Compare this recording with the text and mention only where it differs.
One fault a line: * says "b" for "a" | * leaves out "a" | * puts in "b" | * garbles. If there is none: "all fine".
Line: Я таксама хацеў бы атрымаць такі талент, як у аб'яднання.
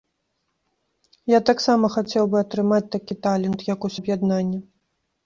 all fine